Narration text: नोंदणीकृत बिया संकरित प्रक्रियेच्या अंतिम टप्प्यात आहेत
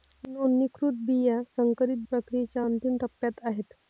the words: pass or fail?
pass